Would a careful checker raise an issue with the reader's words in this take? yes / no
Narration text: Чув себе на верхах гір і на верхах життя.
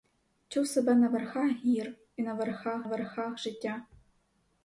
yes